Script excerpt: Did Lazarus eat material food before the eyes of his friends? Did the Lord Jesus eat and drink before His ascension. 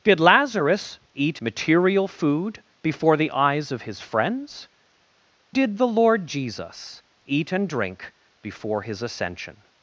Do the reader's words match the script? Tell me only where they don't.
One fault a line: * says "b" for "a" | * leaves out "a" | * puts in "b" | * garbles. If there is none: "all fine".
all fine